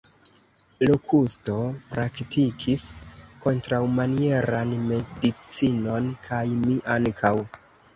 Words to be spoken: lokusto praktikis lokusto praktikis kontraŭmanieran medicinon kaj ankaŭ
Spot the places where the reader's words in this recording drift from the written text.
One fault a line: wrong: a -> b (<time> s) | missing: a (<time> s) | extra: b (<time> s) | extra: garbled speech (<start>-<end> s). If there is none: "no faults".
missing: lokusto praktikis (2.9 s)
extra: mi (6.7 s)